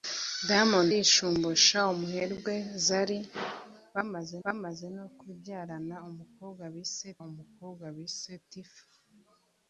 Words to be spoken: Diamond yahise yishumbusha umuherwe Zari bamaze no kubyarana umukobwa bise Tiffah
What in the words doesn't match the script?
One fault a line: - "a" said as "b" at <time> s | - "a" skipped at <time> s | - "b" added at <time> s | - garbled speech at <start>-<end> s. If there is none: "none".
- "yahise" skipped at 0.9 s
- "bamaze" added at 4.4 s
- "umukobwa bise" added at 7.3 s